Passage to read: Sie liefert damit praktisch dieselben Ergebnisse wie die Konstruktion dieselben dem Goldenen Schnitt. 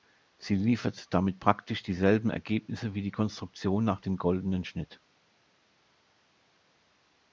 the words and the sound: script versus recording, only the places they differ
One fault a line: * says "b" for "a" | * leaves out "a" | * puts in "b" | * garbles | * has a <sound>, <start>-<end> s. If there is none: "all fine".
* says "nach" for "dieselben"